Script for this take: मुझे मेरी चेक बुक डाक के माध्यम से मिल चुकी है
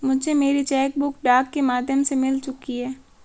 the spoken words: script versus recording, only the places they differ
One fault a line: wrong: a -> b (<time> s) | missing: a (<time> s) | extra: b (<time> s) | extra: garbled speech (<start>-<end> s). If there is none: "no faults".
no faults